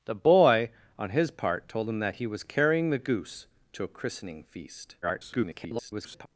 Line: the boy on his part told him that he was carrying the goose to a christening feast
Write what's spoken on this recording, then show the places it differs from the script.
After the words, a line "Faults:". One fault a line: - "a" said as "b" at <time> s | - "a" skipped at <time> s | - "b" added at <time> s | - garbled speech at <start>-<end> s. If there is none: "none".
the boy on his part told him that he was carrying the goose to a christening feast [garbled]
Faults:
- garbled speech at 5.0-6.3 s